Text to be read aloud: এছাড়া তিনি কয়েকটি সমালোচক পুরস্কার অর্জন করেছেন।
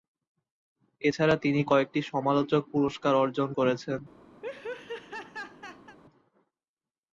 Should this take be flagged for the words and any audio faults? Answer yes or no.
yes